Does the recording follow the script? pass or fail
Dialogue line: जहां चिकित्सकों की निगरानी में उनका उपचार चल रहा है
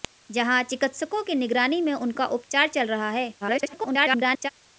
fail